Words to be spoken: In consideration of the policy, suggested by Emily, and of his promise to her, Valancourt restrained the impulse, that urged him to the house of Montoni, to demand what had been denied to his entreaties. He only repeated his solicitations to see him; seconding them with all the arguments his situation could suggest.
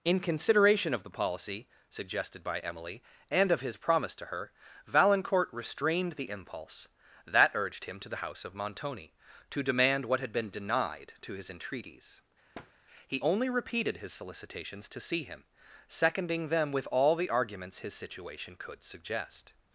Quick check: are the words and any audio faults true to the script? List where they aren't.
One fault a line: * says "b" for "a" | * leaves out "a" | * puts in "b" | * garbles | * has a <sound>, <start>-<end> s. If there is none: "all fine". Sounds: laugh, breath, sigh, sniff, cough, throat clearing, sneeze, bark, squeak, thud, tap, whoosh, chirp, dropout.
* has a thud, 12.5-12.7 s